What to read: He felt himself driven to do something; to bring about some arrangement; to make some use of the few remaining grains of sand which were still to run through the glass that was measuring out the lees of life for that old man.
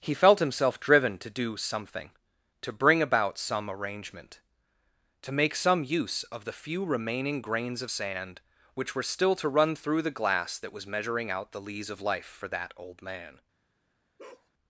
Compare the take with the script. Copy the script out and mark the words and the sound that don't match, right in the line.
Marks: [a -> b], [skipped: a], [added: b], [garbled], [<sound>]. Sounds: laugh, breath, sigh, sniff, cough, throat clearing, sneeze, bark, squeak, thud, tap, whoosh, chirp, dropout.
He felt himself driven to do something; to bring about some arrangement; to make some use of the few remaining grains of sand which were still to run through the glass that was measuring out the lees of life for that old man. [bark]